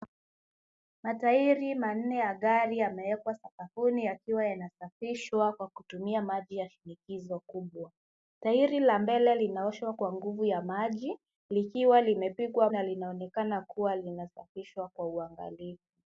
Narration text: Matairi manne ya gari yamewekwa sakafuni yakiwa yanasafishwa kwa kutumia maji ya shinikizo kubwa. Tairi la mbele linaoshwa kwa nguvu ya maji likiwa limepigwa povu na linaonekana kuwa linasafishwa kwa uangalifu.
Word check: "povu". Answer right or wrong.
wrong